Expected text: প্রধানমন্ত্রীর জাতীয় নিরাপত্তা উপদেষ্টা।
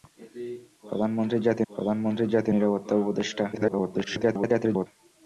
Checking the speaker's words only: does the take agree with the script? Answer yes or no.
no